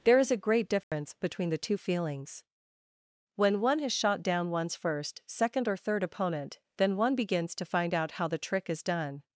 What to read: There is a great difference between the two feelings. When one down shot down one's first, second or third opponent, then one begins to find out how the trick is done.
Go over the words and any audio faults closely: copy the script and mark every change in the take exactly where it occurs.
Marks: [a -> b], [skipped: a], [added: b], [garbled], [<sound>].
There is a great difference [dropout] between the two feelings. When one [down -> has] shot down one's first, second or third opponent, then one begins to find out how the trick is done.